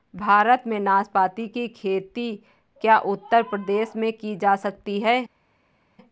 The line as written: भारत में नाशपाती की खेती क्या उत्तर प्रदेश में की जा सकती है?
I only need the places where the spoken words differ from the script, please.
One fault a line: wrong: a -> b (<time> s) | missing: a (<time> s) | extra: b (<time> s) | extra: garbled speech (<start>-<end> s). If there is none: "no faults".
no faults